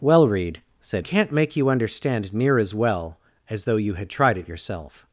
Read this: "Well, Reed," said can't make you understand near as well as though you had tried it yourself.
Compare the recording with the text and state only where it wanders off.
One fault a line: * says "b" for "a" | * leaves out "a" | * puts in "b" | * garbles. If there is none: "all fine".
all fine